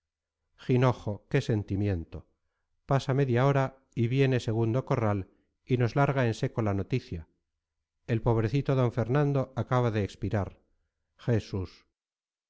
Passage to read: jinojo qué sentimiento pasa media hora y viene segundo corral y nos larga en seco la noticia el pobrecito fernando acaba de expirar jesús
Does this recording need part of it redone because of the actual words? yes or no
yes